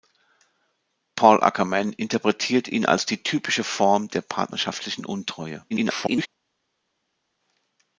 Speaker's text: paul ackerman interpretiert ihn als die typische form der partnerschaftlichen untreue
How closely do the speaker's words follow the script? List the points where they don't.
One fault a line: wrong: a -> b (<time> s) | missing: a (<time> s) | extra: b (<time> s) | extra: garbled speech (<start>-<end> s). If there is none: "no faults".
extra: garbled speech (5.7-6.3 s)